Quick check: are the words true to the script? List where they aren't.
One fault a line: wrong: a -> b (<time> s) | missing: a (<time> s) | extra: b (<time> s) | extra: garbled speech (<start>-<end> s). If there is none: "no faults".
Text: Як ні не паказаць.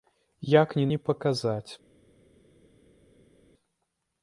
no faults